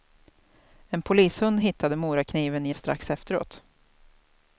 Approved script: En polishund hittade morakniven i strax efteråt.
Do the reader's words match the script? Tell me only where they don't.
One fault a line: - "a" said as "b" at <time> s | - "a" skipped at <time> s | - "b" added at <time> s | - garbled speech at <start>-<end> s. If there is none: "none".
none